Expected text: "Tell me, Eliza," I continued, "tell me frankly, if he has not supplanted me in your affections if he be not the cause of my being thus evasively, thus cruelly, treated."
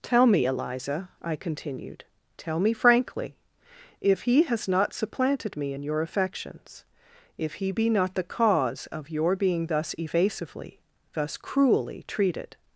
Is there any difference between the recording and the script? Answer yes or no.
yes